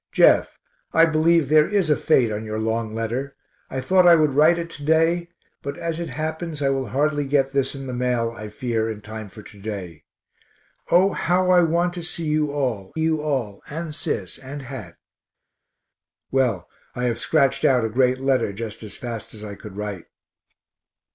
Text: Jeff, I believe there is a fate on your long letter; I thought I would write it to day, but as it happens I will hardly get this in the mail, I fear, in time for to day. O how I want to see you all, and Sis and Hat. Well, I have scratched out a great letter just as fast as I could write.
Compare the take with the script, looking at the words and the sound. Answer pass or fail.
fail